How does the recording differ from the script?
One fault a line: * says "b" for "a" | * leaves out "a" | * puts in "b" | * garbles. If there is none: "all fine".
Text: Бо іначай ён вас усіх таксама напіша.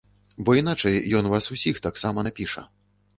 all fine